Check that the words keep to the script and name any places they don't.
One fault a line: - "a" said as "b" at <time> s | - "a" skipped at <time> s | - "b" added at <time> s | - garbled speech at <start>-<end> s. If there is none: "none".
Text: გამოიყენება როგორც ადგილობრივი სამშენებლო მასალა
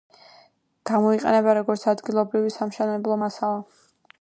none